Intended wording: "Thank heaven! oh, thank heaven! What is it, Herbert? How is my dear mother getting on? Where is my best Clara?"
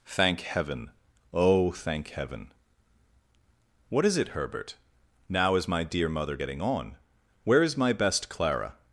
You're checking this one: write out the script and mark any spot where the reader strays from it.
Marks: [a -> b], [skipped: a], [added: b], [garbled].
"Thank heaven! oh, thank heaven! What is it, Herbert? [How -> Now] is my dear mother getting on? Where is my best Clara?"